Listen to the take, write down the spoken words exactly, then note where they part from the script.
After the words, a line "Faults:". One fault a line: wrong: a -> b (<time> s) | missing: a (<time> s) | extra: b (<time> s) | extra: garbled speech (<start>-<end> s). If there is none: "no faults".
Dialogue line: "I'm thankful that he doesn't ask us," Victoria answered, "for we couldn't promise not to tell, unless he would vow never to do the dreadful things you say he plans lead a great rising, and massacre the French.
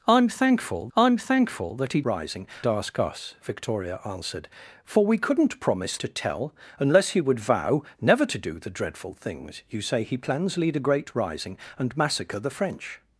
"I'm thankful I'm thankful that he rising ask us," Victoria answered, "for we couldn't promise to tell, unless he would vow never to do the dreadful things you say he plans lead a great rising, and massacre the French.
Faults:
extra: I'm thankful (1.0 s)
wrong: doesn't -> rising (2.0 s)
missing: not (6.0 s)